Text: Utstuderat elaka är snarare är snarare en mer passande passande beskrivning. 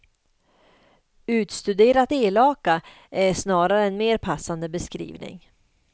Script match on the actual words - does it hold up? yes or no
no